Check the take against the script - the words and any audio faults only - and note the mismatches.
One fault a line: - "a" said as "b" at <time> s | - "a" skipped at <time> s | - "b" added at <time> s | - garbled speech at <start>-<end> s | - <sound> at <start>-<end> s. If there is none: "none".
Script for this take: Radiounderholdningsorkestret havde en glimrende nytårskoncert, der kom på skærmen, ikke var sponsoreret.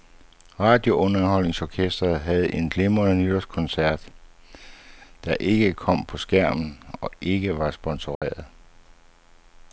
- "ikke" added at 5.4 s
- "og" added at 7.0 s
- dropout at 8.1-8.2 s